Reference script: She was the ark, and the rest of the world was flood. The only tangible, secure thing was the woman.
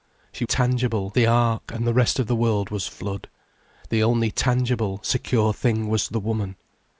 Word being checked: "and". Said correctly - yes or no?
yes